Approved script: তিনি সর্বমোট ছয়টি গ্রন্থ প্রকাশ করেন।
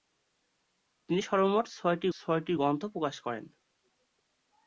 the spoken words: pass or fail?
fail